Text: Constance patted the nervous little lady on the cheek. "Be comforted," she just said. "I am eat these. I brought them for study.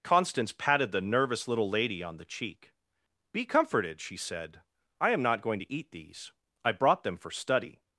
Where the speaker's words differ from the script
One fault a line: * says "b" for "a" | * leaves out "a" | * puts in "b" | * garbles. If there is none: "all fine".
* leaves out "just"
* puts in "not going to"